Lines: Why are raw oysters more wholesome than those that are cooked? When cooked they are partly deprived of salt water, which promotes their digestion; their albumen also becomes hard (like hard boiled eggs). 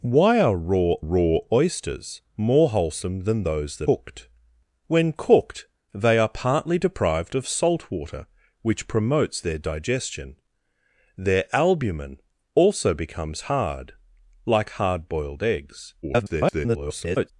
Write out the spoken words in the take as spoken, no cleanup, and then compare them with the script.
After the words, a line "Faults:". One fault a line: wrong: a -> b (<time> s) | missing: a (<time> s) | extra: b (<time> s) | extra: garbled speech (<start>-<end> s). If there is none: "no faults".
Why are raw raw oysters more wholesome than those that cooked? When cooked they are partly deprived of salt water, which promotes their digestion; their albumen also becomes hard (like hard boiled eggs). [garbled]
Faults:
extra: raw (1.0 s)
missing: are (3.9 s)
extra: garbled speech (16.0-17.3 s)